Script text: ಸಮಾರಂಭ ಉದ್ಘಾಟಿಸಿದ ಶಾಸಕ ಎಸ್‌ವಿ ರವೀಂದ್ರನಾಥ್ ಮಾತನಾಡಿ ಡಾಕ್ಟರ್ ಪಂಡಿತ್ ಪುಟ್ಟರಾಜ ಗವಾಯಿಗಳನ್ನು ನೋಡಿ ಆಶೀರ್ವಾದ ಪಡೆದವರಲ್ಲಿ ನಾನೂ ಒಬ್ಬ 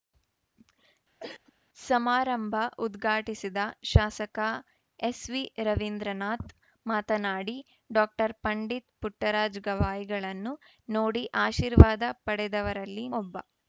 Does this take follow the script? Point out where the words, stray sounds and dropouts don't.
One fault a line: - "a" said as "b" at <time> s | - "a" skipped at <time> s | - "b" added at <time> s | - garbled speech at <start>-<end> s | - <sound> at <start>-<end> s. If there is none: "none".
- cough at 1.2-1.5 s
- "ನಾನೂ" skipped at 13.1 s